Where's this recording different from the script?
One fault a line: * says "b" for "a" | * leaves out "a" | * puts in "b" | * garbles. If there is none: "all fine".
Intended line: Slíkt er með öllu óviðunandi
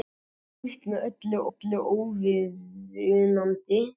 * puts in "öllu"